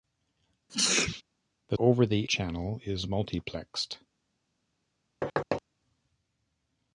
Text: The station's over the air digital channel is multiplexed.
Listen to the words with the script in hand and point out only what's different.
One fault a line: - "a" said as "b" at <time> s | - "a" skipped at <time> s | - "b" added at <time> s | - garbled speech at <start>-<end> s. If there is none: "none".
- "station's" skipped at 1.8 s
- "air digital" skipped at 2.3 s